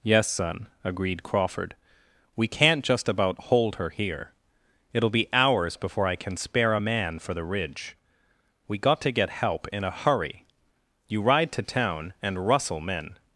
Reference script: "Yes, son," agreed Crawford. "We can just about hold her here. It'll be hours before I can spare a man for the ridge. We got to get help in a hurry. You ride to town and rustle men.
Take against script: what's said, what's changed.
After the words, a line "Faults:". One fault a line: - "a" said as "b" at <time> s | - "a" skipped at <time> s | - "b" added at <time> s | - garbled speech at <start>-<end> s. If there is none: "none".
"Yes, son," agreed Crawford. "We can't just about hold her here. It'll be hours before I can spare a man for the ridge. We got to get help in a hurry. You ride to town and rustle men.
Faults:
- "can" said as "can't" at 2.5 s